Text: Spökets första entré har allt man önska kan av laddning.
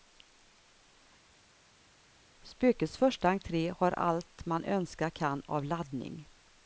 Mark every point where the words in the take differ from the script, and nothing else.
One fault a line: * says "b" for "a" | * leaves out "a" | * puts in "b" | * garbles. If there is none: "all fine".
all fine